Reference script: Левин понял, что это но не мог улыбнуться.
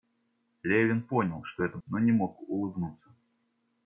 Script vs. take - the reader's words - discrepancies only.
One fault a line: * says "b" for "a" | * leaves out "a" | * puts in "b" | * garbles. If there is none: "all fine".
all fine